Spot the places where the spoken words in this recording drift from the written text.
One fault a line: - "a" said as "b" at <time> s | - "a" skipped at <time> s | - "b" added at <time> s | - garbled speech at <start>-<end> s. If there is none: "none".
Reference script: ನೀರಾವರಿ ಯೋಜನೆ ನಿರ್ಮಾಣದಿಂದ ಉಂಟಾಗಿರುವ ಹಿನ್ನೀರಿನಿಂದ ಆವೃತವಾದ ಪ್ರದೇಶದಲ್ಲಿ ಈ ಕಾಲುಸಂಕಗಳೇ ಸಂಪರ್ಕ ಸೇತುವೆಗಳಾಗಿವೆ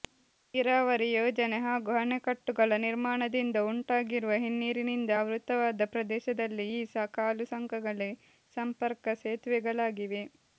- "ಹಾಗೂ ಅಣೆಕಟ್ಟುಗಳ" added at 1.6 s